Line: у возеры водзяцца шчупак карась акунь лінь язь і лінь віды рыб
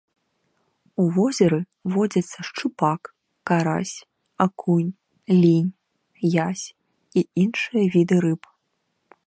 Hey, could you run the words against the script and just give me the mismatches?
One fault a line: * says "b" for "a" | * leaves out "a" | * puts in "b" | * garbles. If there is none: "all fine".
* says "іншыя" for "лінь"